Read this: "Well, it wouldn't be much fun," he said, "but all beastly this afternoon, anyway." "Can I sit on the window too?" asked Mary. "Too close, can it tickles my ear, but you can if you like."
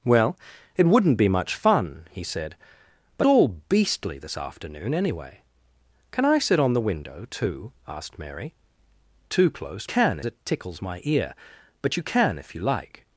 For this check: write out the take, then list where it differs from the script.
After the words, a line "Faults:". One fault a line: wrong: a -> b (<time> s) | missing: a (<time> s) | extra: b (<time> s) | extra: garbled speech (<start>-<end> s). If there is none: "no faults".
"Well, it wouldn't be much fun," he said, "but all beastly this afternoon, anyway." "Can I sit on the window too?" asked Mary. "Too close, can it tickles my ear, but you can if you like."
Faults:
no faults